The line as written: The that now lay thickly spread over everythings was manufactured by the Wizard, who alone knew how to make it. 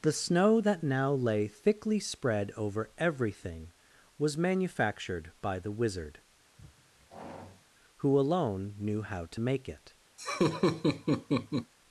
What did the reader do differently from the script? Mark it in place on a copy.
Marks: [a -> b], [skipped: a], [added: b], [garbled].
The [added: snow] that now lay thickly spread over [everythings -> everything] was manufactured by the Wizard, who alone knew how to make it.